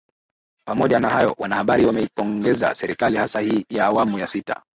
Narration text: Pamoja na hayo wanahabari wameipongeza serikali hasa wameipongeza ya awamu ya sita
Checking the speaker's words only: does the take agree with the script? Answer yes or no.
no